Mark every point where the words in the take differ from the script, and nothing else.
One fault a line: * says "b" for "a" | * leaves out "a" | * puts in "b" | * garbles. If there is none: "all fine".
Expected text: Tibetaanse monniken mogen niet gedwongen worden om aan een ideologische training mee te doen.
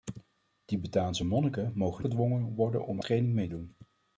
* leaves out "niet"
* leaves out "aan een ideologische"
* leaves out "te"